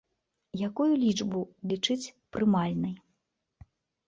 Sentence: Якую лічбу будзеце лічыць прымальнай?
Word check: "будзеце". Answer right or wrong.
wrong